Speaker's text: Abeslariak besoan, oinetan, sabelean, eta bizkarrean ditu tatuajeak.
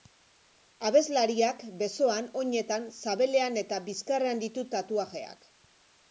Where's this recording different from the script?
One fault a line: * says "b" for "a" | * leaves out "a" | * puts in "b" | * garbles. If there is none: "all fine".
all fine